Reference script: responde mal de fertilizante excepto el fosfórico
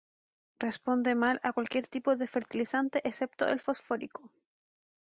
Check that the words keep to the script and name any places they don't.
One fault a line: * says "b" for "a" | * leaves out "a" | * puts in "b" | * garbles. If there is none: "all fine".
* puts in "a cualquier tipo"